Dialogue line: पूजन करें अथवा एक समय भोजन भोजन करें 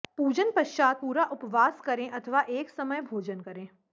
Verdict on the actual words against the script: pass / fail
fail